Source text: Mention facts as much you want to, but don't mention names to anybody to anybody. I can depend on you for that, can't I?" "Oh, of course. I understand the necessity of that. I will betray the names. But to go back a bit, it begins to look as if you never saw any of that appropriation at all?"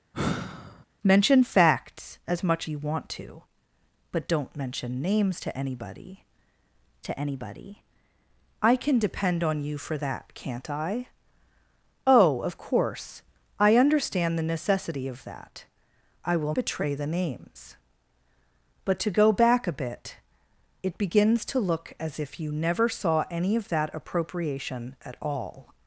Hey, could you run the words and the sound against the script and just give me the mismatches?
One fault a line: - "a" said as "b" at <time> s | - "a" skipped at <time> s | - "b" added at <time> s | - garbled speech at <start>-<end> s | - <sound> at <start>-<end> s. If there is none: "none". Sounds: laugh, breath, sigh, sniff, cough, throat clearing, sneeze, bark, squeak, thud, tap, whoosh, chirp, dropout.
- sigh at 0.1-0.9 s